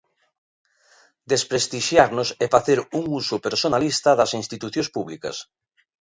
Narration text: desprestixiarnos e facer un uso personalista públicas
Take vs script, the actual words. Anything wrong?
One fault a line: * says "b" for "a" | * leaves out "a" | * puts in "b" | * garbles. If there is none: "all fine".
* puts in "das institucións"